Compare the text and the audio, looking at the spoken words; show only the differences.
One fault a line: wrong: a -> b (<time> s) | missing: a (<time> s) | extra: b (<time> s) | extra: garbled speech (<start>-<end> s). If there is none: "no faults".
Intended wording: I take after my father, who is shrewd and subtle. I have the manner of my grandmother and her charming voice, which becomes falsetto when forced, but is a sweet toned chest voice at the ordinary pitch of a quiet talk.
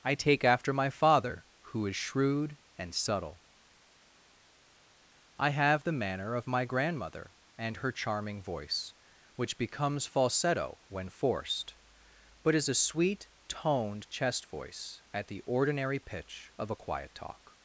no faults